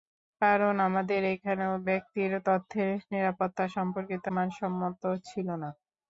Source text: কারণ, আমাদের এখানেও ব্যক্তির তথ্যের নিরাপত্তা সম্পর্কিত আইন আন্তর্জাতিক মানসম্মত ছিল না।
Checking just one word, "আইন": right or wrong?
wrong